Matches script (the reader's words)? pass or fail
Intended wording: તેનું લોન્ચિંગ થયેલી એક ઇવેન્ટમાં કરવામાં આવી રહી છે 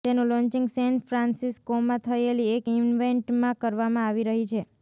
fail